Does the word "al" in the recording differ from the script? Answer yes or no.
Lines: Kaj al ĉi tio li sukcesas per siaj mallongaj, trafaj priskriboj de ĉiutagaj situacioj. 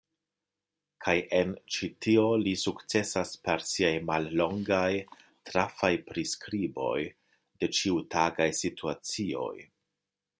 yes